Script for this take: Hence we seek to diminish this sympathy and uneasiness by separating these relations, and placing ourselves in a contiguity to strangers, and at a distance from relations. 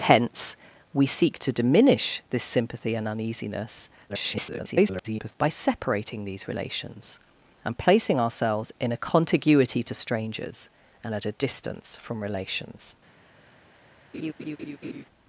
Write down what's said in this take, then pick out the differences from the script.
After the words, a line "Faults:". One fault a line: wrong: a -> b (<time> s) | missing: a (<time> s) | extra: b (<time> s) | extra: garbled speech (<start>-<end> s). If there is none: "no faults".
Hence we seek to diminish this sympathy and uneasiness [garbled] by separating these relations, and placing ourselves in a contiguity to strangers, and at a distance from relations.
Faults:
extra: garbled speech (4.1-5.4 s)